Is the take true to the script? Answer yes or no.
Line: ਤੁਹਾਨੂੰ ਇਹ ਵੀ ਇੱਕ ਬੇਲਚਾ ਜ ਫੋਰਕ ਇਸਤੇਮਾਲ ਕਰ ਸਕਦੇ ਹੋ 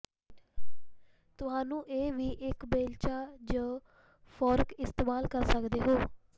yes